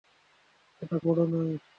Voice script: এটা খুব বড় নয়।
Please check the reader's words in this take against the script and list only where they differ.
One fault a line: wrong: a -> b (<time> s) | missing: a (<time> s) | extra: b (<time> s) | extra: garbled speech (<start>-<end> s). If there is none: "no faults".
missing: খুব (1.0 s)